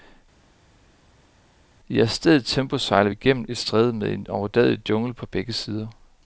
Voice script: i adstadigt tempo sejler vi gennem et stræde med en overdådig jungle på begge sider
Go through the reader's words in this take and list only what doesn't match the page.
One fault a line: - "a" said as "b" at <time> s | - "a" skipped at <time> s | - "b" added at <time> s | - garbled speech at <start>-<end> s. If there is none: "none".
none